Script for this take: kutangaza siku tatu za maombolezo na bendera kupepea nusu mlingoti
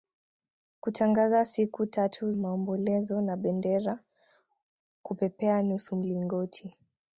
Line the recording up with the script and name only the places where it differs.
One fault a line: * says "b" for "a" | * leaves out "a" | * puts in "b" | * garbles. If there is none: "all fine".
* leaves out "za"